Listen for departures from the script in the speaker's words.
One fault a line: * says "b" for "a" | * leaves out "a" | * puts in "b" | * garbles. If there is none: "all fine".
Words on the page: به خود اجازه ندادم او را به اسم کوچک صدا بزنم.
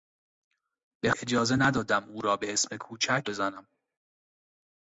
* leaves out "خود"
* leaves out "صدا"